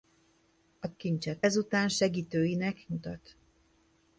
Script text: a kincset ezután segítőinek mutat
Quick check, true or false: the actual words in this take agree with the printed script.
true